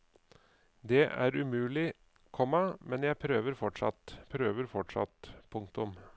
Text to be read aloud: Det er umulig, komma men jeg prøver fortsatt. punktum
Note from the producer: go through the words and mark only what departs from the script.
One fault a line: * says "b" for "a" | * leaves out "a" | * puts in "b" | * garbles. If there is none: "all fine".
* puts in "prøver fortsatt"